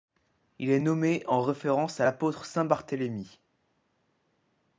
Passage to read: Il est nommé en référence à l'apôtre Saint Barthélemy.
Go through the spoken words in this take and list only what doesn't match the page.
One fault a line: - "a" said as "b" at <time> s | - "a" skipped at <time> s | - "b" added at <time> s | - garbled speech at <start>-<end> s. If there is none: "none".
none